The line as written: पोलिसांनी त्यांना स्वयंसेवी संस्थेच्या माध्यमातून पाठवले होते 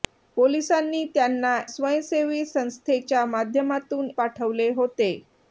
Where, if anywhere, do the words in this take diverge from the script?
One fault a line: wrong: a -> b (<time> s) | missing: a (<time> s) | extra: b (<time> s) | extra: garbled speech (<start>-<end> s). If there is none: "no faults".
no faults